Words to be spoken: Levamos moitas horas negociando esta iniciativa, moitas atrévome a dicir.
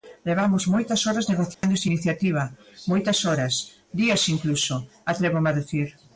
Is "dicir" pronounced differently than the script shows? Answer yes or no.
no